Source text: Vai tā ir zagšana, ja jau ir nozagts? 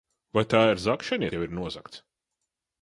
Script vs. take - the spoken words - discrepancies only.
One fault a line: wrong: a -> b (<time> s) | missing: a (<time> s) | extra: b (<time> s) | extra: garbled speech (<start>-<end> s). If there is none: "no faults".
no faults